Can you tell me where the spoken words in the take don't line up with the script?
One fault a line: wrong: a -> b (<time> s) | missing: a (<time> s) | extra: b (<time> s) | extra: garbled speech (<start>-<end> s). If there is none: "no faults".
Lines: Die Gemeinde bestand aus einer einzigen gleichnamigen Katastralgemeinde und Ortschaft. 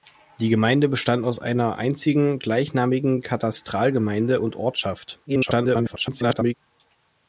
extra: garbled speech (5.3-6.5 s)